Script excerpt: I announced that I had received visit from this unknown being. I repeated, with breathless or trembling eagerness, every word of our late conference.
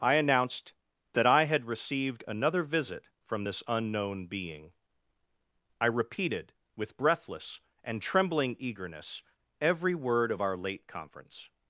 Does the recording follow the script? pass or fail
fail